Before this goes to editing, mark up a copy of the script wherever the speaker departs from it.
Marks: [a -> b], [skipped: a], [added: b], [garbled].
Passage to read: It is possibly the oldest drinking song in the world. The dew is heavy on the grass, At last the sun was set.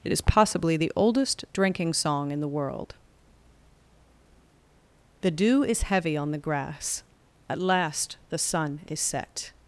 It is possibly the oldest drinking song in the world. The dew is heavy on the grass, At last the sun [was -> is] set.